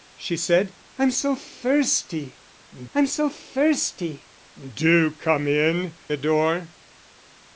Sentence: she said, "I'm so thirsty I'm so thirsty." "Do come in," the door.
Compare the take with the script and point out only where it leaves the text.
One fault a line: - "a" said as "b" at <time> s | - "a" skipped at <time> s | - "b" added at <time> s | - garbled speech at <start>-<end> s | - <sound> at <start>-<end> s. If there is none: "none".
none